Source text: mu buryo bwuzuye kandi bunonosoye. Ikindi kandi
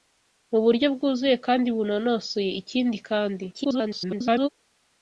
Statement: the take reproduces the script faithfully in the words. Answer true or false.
false